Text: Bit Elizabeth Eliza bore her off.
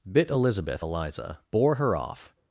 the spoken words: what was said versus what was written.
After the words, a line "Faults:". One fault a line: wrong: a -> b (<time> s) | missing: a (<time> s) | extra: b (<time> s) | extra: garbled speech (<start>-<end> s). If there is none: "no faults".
Bit Elizabeth Eliza bore her off.
Faults:
no faults